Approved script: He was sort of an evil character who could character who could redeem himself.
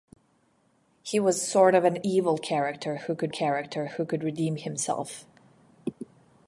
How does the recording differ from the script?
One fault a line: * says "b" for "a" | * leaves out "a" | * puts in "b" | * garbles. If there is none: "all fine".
all fine